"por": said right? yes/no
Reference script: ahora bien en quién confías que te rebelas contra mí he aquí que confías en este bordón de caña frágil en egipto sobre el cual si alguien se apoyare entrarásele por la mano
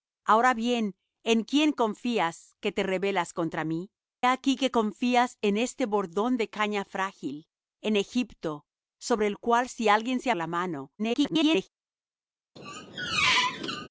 no